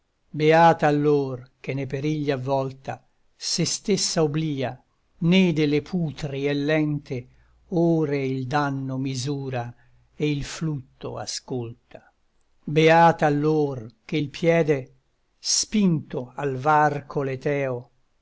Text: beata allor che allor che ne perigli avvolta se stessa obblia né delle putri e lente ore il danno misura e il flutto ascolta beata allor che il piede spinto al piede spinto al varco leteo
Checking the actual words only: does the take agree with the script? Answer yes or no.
no